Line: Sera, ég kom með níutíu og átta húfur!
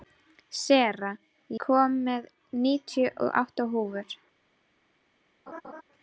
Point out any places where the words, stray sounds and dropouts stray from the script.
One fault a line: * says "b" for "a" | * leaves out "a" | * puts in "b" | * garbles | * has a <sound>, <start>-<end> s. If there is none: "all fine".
* leaves out "ég"
* has a laugh, 5.5-5.8 s